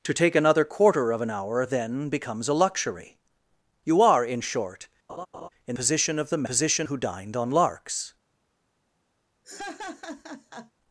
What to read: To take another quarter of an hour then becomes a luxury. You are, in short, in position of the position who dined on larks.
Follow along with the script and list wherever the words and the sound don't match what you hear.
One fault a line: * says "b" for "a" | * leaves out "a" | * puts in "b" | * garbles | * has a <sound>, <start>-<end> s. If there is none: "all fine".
* has a laugh, 5.1-5.5 s
* has a laugh, 9.4-10.7 s